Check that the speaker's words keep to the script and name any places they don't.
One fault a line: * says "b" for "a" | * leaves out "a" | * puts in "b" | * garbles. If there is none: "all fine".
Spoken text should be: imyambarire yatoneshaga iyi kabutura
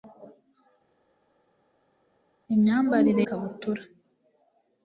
* leaves out "yatoneshaga iyi"